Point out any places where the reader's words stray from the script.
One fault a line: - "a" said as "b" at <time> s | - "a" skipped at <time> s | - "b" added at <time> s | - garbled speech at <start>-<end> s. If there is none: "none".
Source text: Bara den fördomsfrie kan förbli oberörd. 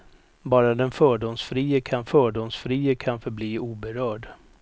- "fördomsfrie kan" added at 2.0 s